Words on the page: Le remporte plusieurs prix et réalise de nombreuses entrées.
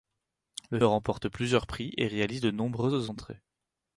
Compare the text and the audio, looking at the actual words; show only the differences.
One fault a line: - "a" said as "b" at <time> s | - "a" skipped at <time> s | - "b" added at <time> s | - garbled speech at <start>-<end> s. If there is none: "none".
none